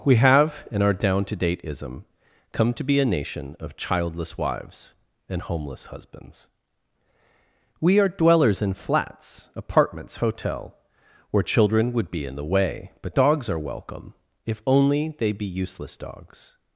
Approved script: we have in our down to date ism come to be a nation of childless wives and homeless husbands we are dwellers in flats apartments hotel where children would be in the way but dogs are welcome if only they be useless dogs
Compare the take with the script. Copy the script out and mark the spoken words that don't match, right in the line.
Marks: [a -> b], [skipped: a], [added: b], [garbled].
we have in our down to date ism come to be a nation of childless wives and homeless husbands we are dwellers in flats apartments hotel where children would be in the way but dogs are welcome if only they be useless dogs